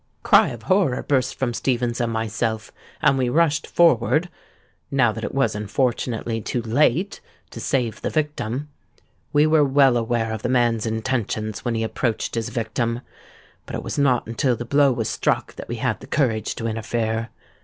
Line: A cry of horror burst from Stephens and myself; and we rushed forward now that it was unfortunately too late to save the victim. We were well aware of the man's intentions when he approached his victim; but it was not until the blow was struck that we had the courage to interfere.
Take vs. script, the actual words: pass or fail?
pass